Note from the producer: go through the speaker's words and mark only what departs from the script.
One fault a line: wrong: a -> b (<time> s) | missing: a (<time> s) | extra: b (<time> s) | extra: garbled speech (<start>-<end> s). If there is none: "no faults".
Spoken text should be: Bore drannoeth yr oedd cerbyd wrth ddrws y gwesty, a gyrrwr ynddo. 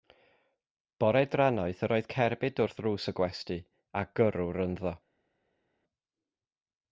no faults